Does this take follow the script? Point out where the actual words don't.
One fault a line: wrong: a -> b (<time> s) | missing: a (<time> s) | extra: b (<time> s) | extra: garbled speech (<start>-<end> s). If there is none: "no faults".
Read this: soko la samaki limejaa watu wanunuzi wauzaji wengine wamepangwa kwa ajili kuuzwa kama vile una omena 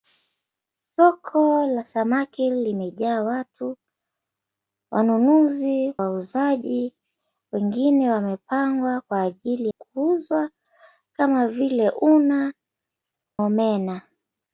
no faults